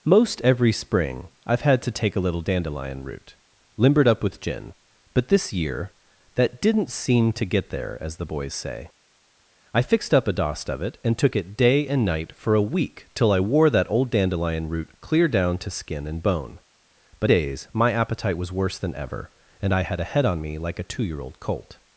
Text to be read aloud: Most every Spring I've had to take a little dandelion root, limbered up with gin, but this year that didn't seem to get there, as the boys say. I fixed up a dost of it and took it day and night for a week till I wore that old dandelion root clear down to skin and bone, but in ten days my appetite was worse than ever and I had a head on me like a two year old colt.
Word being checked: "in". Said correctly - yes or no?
no